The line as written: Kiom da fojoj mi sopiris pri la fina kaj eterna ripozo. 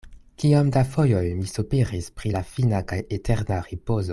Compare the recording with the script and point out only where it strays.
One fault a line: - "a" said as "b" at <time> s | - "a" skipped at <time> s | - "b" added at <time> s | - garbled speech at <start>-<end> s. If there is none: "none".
none